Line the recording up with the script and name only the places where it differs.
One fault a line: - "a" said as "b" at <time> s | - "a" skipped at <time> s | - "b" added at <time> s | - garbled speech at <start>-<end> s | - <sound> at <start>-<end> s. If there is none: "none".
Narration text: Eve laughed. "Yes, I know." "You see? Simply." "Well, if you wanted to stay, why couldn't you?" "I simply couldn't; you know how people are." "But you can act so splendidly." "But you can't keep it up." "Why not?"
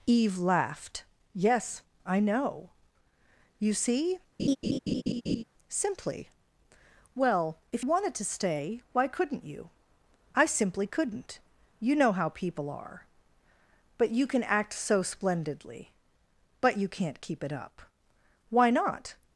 - laugh at 4.4-5.4 s
- "you" skipped at 7.8 s